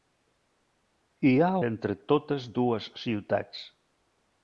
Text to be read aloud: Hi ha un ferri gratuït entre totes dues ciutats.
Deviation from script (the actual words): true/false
true